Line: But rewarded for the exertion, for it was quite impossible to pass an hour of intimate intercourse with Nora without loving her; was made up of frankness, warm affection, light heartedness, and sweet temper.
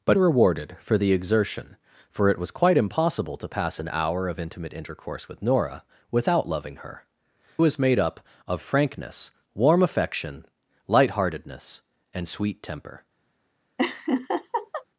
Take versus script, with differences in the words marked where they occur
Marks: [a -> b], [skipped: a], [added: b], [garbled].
But rewarded for the exertion, for it was quite impossible to pass an hour of intimate intercourse with Nora without loving her; was made up of frankness, warm affection, light heartedness, and sweet temper.